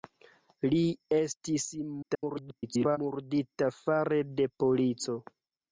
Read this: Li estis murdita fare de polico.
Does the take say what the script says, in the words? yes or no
no